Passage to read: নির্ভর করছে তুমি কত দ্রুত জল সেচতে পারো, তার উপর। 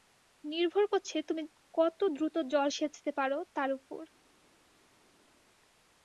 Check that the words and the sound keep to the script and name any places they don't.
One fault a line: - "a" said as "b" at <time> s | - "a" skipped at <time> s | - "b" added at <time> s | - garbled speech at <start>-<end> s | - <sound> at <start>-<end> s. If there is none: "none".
none